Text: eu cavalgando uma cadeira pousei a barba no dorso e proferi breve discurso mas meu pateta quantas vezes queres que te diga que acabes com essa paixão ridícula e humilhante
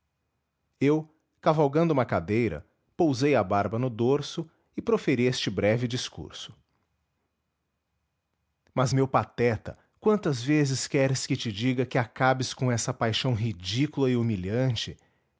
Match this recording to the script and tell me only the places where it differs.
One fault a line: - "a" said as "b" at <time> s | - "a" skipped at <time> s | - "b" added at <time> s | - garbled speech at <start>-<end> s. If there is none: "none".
- "este" added at 5.2 s